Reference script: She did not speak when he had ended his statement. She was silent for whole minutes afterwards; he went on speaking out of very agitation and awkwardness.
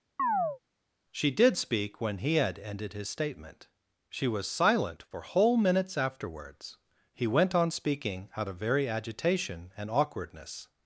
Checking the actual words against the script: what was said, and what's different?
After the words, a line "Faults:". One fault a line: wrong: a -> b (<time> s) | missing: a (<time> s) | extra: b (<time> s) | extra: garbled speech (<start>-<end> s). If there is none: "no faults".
She did speak when he had ended his statement. She was silent for whole minutes afterwards; he went on speaking out of very agitation and awkwardness.
Faults:
missing: not (1.6 s)